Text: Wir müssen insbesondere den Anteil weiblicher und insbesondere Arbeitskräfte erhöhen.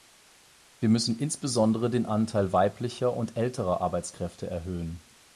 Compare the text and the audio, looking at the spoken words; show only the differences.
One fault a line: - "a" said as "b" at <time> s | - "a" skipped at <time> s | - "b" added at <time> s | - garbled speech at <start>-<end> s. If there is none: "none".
- "insbesondere" said as "älterer" at 3.4 s